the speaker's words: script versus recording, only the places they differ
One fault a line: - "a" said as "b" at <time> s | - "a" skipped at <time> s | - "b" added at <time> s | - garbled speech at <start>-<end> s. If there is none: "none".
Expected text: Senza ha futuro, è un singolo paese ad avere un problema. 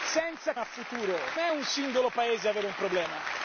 none